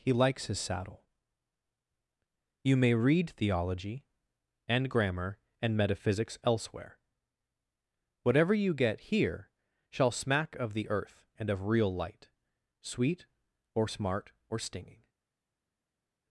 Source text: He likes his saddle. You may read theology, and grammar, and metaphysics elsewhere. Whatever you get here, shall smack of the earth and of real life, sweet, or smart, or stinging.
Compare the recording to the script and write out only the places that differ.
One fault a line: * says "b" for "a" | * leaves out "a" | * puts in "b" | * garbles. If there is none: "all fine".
* says "light" for "life"